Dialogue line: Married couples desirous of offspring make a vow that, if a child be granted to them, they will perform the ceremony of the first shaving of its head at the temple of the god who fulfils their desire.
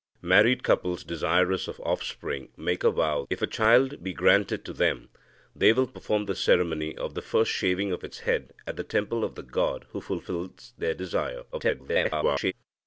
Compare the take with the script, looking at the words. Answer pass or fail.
fail